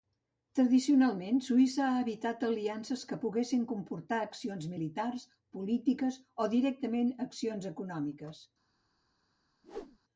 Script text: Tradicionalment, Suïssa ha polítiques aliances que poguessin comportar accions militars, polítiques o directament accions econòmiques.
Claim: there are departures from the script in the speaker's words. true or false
true